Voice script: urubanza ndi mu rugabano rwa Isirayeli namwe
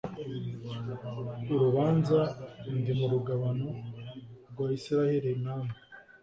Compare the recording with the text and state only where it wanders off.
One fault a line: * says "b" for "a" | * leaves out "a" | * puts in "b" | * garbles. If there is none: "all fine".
all fine